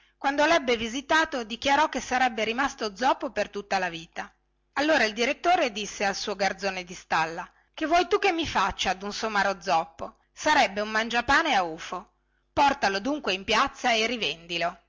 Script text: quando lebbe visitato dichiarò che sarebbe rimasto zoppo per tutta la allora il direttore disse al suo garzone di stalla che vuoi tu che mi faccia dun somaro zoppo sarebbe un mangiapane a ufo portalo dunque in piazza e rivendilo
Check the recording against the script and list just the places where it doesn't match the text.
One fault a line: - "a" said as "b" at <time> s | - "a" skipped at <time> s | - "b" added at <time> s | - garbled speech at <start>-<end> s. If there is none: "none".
- "vita" added at 3.9 s